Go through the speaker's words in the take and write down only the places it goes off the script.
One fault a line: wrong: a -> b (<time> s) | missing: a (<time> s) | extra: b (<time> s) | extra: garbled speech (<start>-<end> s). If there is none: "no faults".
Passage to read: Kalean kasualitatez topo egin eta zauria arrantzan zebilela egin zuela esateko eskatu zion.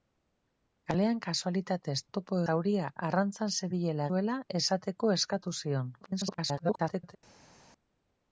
missing: egin eta (2.4 s)
missing: egin (4.1 s)
extra: garbled speech (6.0-7.2 s)